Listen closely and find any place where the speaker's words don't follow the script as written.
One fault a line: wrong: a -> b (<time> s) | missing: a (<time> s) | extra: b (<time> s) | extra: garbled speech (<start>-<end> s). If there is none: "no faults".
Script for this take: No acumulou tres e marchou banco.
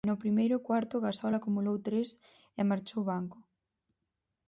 extra: primeiro cuarto Gasol (0.2 s)